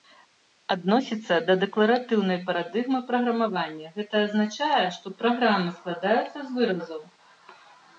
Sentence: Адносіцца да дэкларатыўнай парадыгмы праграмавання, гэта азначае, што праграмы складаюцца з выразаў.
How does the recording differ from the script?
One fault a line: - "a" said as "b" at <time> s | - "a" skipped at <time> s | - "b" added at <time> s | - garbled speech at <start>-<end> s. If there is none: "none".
none